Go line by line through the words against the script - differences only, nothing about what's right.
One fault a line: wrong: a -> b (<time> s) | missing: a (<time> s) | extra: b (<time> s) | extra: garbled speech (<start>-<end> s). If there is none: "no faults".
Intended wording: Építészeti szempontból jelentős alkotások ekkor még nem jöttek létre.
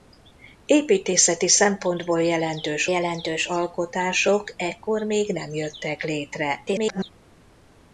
extra: jelentős (2.9 s)
extra: garbled speech (6.7-7.1 s)